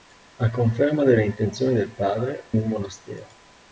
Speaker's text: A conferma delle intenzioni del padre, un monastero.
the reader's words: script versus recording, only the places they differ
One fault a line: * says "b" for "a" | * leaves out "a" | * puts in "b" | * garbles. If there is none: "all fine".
all fine